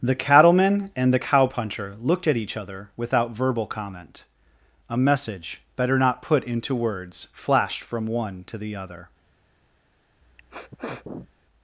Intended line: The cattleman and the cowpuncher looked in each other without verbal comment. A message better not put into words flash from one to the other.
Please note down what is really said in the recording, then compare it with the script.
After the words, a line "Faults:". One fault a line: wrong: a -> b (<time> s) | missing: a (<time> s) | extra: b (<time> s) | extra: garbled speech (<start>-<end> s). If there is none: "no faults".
The cattleman and the cowpuncher looked at each other without verbal comment. A message better not put into words flashed from one to the other.
Faults:
wrong: in -> at (2.3 s)
wrong: flash -> flashed (7.3 s)